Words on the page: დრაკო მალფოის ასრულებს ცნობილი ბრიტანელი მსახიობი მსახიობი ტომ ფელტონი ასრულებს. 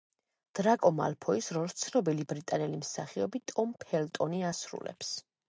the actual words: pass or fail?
fail